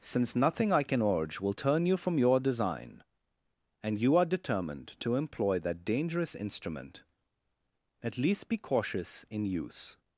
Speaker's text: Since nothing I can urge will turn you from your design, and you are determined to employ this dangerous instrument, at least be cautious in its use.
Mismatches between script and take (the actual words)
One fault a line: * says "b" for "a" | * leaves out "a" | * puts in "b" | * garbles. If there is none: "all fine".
* says "that" for "this"
* leaves out "its"